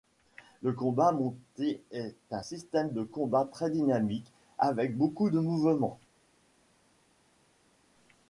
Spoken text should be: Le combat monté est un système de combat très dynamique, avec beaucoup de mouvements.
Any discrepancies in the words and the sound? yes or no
no